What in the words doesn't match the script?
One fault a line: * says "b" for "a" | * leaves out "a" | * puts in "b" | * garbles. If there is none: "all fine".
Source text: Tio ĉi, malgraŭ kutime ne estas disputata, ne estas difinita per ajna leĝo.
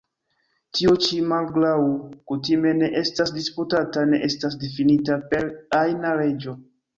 all fine